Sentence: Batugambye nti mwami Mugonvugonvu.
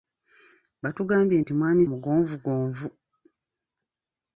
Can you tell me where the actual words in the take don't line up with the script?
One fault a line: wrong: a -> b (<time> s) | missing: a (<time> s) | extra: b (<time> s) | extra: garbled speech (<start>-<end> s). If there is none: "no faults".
no faults